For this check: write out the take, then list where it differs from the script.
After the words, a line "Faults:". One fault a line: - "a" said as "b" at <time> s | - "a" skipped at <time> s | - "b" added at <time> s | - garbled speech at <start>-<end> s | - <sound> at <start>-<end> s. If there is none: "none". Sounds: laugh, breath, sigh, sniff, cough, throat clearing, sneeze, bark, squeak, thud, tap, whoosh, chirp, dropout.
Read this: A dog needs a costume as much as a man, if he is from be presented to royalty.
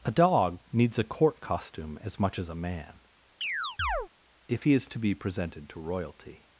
A dog needs a court costume as much as a man, if he is to be presented to royalty.
Faults:
- "court" added at 1.0 s
- chirp at 3.4-4.1 s
- "from" said as "to" at 4.9 s